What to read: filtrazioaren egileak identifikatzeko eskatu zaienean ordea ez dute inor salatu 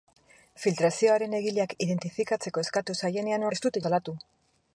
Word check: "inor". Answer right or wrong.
wrong